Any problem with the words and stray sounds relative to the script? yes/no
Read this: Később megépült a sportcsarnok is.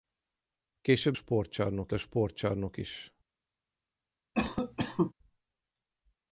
yes